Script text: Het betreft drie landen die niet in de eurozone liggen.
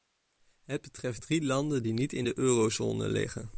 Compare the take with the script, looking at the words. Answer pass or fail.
pass